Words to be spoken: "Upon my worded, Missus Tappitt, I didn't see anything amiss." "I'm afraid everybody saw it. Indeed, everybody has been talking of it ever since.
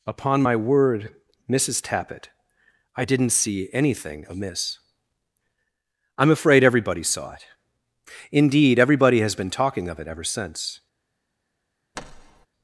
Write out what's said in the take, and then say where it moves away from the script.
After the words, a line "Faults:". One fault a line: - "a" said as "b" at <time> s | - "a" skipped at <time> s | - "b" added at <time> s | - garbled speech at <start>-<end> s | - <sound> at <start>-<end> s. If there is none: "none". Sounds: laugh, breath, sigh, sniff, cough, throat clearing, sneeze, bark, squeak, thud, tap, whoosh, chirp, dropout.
"Upon my word, Missus Tappitt, I didn't see anything amiss." "I'm afraid everybody saw it. Indeed, everybody has been talking of it ever since.
Faults:
- "worded" said as "word" at 0.5 s
- thud at 11.9-12.5 s